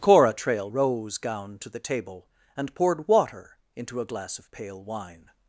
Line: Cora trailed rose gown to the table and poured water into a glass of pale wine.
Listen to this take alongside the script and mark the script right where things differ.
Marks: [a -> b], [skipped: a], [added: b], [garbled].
Cora trailed rose gown to the table and poured water into a glass of pale wine.